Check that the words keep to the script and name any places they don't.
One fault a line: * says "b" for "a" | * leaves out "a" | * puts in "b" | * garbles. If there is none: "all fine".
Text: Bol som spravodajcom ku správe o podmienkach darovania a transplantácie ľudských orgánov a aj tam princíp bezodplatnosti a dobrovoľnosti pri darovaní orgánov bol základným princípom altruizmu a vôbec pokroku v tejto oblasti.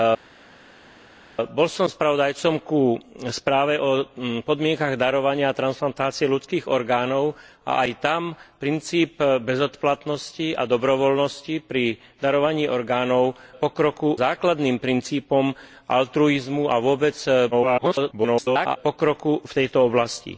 * says "pokroku" for "bol"
* garbles